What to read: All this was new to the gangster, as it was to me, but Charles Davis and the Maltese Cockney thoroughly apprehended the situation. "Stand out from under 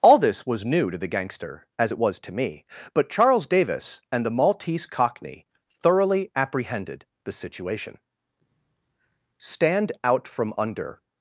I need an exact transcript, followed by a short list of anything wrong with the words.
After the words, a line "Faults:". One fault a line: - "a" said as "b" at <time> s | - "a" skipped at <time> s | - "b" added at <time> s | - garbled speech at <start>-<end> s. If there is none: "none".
All this was new to the gangster, as it was to me, but Charles Davis and the Maltese Cockney thoroughly apprehended the situation. "Stand out from under
Faults:
none